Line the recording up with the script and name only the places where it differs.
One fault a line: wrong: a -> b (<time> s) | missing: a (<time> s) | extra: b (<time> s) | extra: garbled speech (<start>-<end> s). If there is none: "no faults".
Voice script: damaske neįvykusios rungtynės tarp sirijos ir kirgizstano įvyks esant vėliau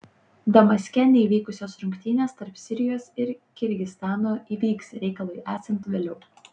extra: reikalui (5.0 s)